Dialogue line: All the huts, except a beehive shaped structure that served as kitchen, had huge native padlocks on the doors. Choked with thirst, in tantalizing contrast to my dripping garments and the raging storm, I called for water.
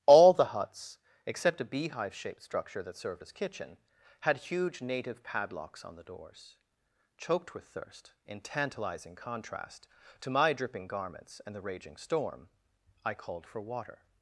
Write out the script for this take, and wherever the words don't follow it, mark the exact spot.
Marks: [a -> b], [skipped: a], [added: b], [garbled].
All the huts, except a beehive shaped structure that served as kitchen, had huge native padlocks on the doors. Choked with thirst, in tantalizing contrast to my dripping garments and the raging storm, I called for water.